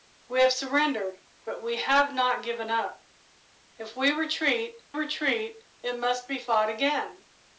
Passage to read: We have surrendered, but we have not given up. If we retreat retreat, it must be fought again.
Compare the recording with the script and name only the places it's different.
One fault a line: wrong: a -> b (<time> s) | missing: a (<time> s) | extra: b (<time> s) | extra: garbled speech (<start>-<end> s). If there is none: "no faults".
no faults